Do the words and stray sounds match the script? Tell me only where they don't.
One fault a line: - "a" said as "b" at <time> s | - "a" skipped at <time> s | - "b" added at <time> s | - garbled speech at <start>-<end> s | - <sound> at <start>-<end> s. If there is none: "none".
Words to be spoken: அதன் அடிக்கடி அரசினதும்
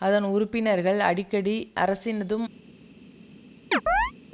- "உறுப்பினர்கள்" added at 0.2 s
- chirp at 3.7-4.1 s